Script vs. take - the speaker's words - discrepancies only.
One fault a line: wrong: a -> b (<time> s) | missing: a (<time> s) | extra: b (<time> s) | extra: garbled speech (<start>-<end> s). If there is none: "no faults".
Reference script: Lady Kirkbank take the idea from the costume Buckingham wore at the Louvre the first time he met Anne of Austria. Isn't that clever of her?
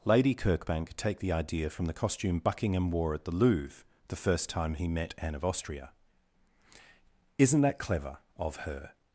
no faults